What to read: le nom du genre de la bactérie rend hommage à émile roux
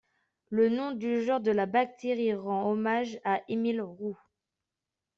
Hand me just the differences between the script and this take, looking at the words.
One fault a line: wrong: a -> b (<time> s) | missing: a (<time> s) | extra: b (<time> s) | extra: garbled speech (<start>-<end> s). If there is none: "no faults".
no faults